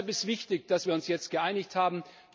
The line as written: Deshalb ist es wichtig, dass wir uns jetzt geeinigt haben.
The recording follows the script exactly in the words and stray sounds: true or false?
true